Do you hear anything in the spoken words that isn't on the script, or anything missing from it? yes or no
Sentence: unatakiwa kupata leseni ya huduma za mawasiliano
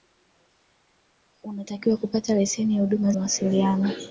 yes